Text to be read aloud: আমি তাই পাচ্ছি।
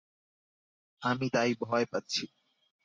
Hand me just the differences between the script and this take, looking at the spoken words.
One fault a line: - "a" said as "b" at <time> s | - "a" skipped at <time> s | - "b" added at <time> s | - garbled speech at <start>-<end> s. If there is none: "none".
- "ভয়" added at 1.6 s